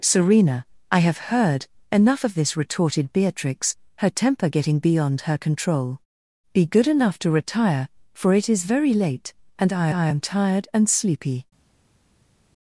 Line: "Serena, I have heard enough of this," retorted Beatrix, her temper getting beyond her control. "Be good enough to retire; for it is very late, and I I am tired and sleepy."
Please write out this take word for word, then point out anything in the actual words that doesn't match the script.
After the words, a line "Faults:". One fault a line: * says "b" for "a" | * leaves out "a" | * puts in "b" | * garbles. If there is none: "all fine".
"Serena, I have heard enough of this," retorted Beatrix, her temper getting beyond her control. "Be good enough to retire; for it is very late, and I I am tired and sleepy."
Faults:
all fine